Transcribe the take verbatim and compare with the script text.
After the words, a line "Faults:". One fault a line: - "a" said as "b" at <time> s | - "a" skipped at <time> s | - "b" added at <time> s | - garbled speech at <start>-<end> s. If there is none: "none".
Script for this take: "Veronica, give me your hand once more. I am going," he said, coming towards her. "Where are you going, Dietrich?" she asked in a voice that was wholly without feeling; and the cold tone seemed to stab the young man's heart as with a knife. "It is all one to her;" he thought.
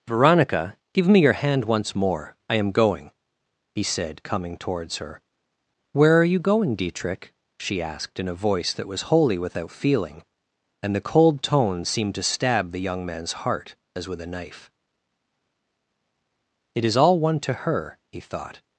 "Veronica, give me your hand once more. I am going," he said, coming towards her. "Where are you going, Dietrich?" she asked in a voice that was wholly without feeling; and the cold tone seemed to stab the young man's heart as with a knife. "It is all one to her;" he thought.
Faults:
none